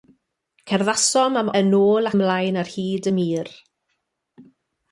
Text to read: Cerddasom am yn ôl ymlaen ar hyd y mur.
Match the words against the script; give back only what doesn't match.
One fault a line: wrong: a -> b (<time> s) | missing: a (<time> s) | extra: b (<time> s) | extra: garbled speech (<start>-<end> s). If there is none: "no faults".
no faults